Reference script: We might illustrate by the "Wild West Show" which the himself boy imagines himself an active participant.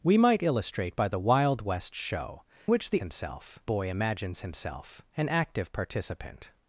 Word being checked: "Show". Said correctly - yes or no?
yes